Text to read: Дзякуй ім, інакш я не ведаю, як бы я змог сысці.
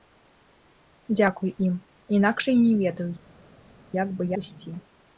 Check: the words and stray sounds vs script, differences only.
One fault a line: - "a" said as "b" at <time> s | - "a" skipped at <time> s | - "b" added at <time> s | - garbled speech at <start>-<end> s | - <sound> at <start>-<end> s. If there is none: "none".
- "я змог" skipped at 4.3 s